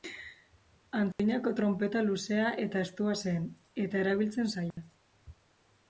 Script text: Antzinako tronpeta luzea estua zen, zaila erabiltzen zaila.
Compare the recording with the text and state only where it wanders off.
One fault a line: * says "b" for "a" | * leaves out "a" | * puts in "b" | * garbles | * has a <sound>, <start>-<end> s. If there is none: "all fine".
* has a dropout, 1.1-1.2 s
* puts in "eta"
* says "eta" for "zaila"
* has a dropout, 4.7-4.8 s